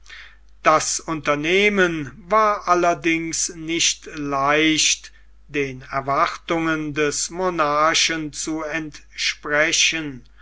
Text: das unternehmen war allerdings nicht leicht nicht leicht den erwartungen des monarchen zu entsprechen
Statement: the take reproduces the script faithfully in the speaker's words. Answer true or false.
false